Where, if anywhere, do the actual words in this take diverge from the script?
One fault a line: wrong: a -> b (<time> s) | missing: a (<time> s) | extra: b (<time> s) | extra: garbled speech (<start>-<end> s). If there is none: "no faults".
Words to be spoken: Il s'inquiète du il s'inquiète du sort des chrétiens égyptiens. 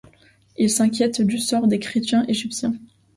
missing: il s'inquiète du (1.4 s)